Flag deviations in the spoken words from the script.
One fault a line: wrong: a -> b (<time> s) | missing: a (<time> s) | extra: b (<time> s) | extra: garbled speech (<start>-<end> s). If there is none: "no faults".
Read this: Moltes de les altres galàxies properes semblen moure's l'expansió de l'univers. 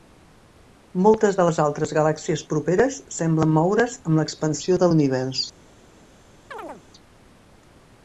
extra: amb (4.0 s)